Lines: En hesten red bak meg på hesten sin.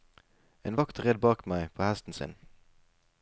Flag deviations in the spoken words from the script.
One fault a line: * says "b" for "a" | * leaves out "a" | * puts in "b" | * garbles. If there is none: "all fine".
* says "vakt" for "hesten"